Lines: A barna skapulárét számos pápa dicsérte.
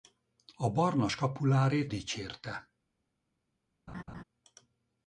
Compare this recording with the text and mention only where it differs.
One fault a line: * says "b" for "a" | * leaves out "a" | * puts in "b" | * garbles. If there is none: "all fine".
* leaves out "számos pápa"